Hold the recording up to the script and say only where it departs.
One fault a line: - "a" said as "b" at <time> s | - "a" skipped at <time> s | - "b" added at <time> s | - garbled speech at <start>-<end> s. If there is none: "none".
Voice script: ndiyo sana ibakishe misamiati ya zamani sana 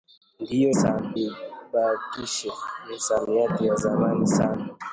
none